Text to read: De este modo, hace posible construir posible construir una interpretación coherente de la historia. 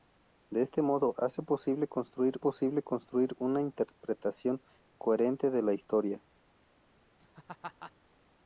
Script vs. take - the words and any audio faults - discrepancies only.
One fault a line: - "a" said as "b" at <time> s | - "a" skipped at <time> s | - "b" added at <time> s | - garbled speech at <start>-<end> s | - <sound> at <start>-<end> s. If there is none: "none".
- laugh at 7.2-7.9 s